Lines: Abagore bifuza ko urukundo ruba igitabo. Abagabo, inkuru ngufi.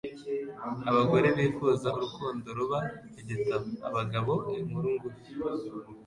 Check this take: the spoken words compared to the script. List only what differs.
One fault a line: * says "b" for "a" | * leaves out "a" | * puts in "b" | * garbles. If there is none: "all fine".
* leaves out "ko"